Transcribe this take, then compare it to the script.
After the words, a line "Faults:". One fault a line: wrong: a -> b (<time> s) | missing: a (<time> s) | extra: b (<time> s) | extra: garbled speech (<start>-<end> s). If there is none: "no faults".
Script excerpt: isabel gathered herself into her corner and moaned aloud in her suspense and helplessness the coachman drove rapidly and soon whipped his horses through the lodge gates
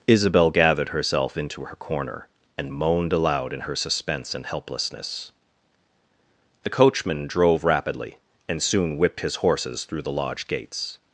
isabel gathered herself into her corner and moaned aloud in her suspense and helplessness the coachman drove rapidly and soon whipped his horses through the lodge gates
Faults:
no faults